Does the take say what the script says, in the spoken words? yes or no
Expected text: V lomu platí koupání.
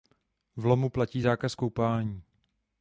no